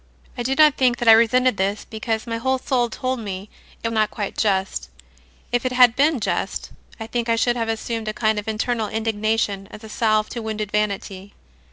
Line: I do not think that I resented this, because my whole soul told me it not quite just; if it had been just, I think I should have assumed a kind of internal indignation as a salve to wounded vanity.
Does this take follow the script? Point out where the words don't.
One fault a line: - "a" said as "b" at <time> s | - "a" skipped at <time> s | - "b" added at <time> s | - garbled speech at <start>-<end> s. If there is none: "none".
none